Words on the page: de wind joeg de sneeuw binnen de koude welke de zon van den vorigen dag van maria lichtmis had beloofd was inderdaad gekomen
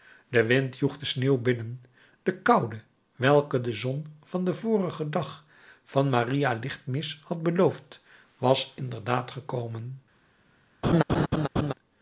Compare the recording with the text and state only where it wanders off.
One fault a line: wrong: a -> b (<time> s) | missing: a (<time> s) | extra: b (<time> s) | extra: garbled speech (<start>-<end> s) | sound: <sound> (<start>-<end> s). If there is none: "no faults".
sound: laugh (10.8-11.7 s)